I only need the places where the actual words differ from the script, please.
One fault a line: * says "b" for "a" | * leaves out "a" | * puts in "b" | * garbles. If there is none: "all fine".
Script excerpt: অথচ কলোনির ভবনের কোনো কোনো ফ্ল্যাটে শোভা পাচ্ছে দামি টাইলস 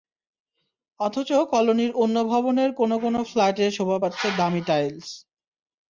* puts in "অন্য"